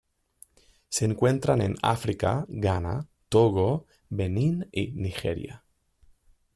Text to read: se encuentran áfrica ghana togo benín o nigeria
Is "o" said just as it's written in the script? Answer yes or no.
no